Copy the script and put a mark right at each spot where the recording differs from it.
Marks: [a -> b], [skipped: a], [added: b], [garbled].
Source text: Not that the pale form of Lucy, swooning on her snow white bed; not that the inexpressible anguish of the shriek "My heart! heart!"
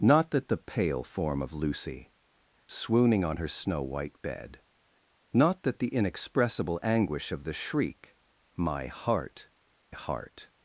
Not that the pale form of Lucy, swooning on her snow white bed; not that the inexpressible anguish of the shriek "My heart! heart!"